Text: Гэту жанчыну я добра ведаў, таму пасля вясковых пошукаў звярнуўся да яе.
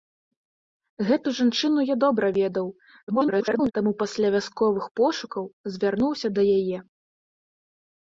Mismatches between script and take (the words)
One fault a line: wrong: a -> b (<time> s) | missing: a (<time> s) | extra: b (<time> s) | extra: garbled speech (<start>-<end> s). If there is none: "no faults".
extra: garbled speech (3.1-3.7 s)